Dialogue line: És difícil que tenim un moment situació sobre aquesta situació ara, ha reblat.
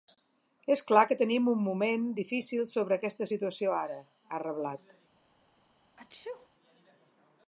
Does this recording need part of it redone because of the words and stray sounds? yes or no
yes